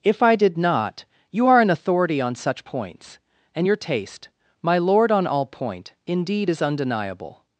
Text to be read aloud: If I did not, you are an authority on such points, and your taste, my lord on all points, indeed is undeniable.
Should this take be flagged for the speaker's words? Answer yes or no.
yes